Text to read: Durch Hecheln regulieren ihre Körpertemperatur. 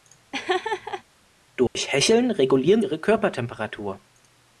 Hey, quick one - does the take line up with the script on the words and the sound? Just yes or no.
no